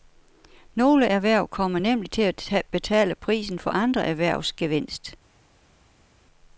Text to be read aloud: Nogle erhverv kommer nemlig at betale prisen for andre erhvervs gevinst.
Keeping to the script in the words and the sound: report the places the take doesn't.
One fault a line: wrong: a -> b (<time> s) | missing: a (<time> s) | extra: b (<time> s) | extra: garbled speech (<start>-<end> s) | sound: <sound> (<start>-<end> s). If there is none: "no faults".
extra: til (2.1 s)